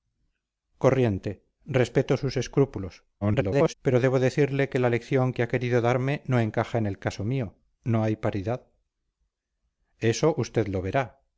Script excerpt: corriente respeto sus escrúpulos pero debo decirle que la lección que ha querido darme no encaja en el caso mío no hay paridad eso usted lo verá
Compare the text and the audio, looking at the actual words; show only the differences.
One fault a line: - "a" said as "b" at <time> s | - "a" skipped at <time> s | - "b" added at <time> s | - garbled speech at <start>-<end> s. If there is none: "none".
- garbled speech at 3.2-3.7 s